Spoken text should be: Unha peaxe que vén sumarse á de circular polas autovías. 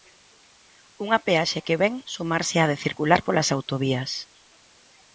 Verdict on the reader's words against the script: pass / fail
pass